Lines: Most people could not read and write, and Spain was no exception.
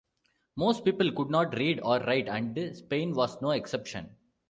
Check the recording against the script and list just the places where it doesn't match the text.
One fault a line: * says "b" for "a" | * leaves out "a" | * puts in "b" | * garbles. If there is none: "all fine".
* says "or" for "and"